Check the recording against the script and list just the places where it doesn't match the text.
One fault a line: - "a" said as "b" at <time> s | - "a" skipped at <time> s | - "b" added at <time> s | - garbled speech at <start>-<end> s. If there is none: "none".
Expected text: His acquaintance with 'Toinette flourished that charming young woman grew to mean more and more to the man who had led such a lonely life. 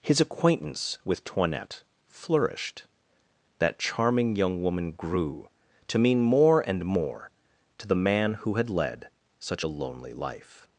none